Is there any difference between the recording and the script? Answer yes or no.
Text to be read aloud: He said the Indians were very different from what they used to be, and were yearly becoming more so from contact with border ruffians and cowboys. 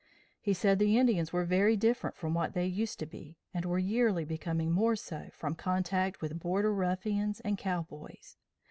no